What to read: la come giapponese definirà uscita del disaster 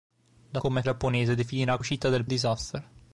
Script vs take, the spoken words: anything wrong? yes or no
no